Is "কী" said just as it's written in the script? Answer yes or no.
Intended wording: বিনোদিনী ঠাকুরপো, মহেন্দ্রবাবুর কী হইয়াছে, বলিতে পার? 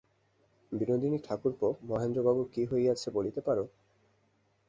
yes